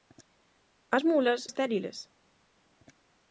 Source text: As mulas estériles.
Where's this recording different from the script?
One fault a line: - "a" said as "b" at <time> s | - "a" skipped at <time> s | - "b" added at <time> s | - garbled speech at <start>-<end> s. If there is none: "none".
none